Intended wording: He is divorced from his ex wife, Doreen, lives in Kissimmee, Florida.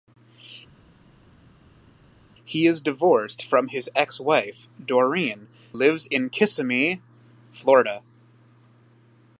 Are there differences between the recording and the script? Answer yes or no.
no